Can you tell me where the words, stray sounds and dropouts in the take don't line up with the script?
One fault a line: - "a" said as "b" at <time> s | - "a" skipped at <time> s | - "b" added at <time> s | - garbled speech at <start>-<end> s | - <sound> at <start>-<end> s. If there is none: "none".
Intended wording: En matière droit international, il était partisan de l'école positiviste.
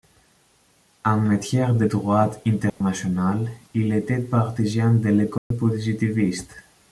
- "de" added at 1.8 s
- dropout at 2.7-2.8 s
- dropout at 5.4-5.5 s